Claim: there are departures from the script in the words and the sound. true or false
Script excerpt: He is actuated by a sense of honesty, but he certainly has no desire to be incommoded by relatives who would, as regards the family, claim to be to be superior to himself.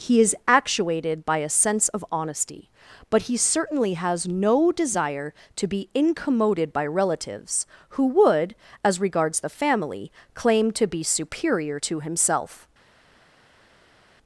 true